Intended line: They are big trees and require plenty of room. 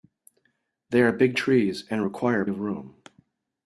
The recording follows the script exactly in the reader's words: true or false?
false